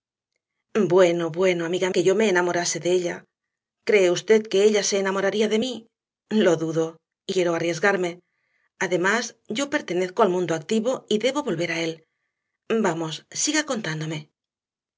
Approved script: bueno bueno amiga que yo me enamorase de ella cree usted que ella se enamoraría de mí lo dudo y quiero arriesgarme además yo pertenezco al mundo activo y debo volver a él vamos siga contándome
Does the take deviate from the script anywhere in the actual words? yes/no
no